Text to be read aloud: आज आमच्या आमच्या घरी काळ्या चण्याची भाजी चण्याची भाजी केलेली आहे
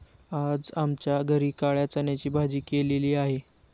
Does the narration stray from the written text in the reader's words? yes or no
yes